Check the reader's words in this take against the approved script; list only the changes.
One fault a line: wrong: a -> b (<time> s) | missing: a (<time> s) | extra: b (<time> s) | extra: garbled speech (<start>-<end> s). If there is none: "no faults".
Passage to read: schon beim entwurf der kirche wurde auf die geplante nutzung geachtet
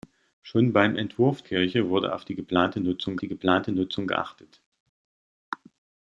missing: der (1.4 s)
extra: die geplante nutzung (3.2 s)